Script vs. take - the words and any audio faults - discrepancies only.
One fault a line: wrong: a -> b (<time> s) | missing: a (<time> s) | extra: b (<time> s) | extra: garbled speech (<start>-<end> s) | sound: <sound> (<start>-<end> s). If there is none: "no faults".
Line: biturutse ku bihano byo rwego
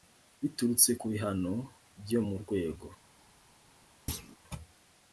extra: mu (2.3 s)
sound: thud (4.1-4.4 s)